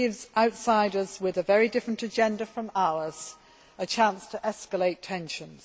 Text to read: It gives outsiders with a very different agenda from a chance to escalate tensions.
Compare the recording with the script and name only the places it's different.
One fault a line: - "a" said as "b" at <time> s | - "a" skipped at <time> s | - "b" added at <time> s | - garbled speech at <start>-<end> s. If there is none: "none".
- "ours" added at 2.7 s